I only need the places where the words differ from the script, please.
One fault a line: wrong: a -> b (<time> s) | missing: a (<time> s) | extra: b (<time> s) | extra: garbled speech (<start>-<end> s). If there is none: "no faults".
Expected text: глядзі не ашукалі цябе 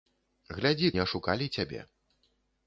no faults